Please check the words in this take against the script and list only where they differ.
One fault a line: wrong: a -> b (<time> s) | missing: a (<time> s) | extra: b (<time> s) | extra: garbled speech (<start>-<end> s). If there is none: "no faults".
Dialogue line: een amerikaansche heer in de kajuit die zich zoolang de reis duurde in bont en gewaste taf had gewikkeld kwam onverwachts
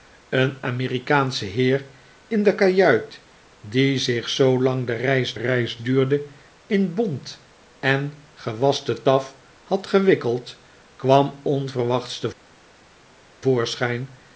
extra: reis (5.3 s)